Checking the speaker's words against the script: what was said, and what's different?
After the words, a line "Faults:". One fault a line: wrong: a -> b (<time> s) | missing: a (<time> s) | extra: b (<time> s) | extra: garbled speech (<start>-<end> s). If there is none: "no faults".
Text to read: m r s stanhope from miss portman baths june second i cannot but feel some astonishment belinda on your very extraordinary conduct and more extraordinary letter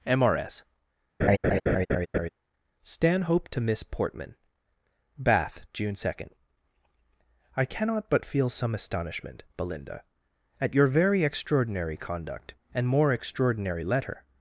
m r s stanhope to miss portman bath june second i cannot but feel some astonishment belinda at your very extraordinary conduct and more extraordinary letter
Faults:
wrong: from -> to (3.5 s)
wrong: baths -> bath (5.2 s)
wrong: on -> at (10.6 s)